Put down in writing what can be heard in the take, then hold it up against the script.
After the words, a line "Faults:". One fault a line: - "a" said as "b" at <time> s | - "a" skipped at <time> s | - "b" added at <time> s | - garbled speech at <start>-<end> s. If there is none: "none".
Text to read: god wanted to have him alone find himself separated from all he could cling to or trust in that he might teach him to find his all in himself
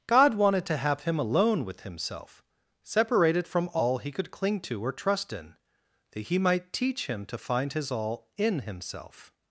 god wanted to have him alone with himself separated from all he could cling to or trust in that he might teach him to find his all in himself
Faults:
- "find" said as "with" at 1.6 s